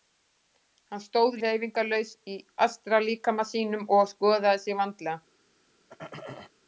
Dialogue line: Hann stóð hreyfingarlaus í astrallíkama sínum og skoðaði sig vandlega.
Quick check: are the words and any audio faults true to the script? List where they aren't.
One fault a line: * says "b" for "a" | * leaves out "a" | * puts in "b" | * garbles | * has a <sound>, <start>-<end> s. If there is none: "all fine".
* has a throat clearing, 5.9-6.5 s